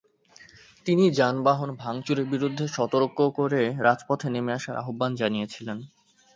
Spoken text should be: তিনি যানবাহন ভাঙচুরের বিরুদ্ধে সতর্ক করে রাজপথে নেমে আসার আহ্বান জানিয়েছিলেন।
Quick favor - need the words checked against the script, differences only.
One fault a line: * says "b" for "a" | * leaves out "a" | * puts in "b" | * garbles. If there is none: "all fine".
all fine